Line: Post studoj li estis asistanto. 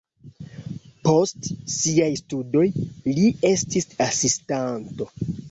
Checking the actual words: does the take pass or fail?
fail